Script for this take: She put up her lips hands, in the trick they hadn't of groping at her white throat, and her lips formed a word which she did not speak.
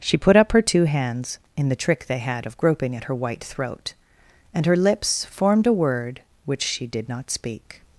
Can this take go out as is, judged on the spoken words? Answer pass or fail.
fail